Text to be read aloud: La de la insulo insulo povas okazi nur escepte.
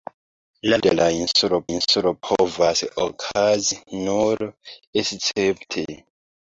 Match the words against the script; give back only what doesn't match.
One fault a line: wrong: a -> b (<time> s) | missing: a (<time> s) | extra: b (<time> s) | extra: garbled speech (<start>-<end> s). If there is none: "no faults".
no faults